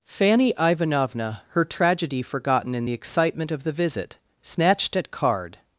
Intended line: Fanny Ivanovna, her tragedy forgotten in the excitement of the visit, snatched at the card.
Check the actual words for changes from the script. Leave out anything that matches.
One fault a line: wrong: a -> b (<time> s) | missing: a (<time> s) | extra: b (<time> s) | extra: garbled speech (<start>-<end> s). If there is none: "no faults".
missing: the (5.1 s)